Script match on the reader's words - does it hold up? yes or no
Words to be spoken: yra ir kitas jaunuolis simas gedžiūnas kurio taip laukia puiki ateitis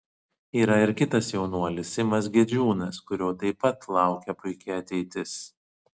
no